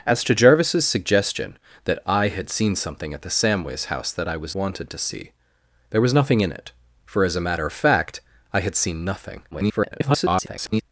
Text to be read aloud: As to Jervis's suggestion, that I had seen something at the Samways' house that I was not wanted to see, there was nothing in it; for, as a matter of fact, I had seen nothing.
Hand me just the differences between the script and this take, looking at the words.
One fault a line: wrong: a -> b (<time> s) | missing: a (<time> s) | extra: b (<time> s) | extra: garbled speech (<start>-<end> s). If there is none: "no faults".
missing: not (4.5 s)
extra: garbled speech (9.5-10.8 s)